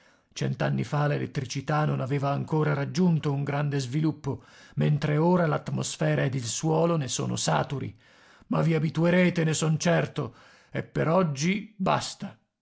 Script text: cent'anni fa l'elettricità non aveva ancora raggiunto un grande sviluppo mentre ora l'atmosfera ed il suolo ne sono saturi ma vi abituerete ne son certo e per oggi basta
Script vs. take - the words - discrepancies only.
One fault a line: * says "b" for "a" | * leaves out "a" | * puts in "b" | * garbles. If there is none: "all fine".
all fine